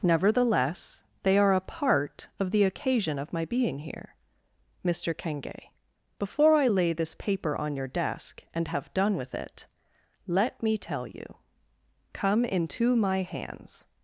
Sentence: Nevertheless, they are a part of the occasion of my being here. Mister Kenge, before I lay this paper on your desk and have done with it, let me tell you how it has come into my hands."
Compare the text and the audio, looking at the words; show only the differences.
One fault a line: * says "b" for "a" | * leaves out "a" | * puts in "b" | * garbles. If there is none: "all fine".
* leaves out "how it has"